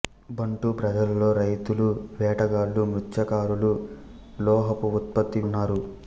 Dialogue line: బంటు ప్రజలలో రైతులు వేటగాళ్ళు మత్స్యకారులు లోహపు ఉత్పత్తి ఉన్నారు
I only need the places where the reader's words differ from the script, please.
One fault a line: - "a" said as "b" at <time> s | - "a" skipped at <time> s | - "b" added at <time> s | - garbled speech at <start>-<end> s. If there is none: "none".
none